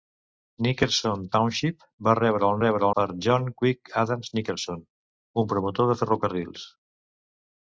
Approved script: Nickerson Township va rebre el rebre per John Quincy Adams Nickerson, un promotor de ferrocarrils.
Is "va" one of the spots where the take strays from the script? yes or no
no